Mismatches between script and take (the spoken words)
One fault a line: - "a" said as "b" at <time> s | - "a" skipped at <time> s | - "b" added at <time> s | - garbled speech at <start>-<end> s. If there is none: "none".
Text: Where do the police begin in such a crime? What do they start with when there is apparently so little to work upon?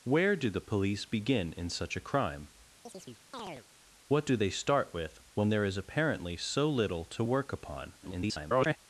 - garbled speech at 8.0-8.8 s